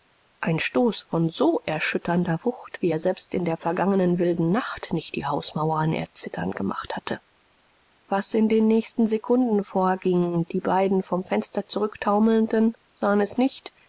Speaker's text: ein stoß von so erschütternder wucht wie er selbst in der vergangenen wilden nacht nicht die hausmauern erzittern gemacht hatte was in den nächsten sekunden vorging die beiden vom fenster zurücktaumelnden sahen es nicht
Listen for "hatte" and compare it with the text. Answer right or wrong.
right